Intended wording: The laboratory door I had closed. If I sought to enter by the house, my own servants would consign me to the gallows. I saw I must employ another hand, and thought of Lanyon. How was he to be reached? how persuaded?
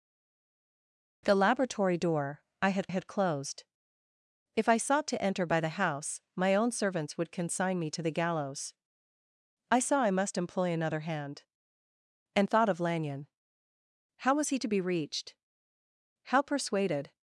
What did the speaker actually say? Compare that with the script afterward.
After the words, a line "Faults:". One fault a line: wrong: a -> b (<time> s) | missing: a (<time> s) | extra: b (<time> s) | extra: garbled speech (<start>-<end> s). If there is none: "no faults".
The laboratory door I had had closed. If I sought to enter by the house, my own servants would consign me to the gallows. I saw I must employ another hand, and thought of Lanyon. How was he to be reached? how persuaded?
Faults:
extra: had (2.9 s)